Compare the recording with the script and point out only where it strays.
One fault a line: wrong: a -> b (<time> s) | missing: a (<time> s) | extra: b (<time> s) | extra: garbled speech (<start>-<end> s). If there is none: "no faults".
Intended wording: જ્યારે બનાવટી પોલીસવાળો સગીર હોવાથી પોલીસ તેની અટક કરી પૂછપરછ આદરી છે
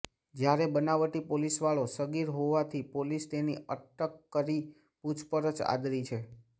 no faults